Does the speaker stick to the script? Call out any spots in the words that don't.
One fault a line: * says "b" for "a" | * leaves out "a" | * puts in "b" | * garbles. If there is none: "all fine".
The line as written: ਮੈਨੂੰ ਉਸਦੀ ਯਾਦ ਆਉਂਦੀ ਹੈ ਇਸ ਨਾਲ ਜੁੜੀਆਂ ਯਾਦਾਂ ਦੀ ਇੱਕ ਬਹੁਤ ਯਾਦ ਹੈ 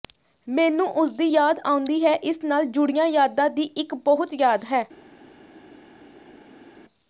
all fine